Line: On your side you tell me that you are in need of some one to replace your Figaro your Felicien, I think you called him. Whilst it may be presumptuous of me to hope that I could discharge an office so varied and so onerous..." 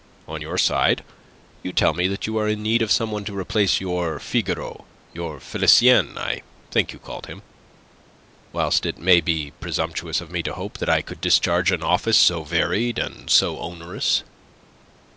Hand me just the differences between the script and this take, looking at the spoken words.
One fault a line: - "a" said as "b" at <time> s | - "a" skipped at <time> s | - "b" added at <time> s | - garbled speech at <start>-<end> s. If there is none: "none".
none